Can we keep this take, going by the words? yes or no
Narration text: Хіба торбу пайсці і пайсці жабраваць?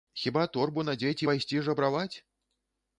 no